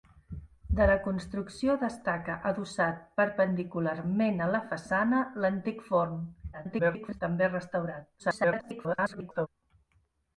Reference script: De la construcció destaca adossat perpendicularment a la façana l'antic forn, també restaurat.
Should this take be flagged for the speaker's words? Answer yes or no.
yes